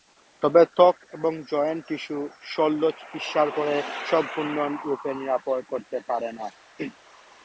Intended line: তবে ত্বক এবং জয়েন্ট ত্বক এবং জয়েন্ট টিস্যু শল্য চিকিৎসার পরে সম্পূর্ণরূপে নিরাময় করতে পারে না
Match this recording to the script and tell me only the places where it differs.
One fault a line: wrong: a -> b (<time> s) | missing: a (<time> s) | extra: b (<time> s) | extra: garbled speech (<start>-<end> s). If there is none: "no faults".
missing: ত্বক এবং জয়েন্ট (1.8 s)